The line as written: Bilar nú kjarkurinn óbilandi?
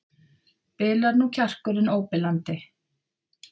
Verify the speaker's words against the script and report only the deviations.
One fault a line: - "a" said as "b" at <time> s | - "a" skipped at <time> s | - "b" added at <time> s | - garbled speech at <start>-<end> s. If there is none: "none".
none